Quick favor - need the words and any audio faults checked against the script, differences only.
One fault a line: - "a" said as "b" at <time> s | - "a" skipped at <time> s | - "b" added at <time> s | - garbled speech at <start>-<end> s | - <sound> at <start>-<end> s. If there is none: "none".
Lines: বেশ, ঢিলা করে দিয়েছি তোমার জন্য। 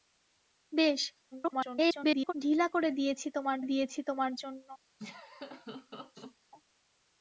- garbled speech at 1.3-2.3 s
- "দিয়েছি তোমার" added at 3.6 s
- laugh at 5.0-6.4 s